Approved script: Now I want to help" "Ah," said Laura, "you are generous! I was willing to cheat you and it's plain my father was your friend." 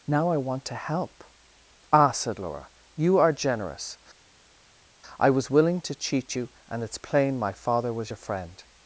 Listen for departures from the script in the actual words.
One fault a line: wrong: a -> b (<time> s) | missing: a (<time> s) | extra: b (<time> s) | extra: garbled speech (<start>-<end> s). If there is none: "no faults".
no faults